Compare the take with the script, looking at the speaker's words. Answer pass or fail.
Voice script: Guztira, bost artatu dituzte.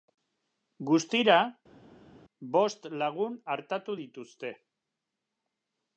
fail